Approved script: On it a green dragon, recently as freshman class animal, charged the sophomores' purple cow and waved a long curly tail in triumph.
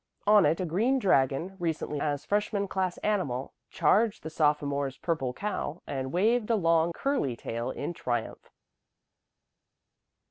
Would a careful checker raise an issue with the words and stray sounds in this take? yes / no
no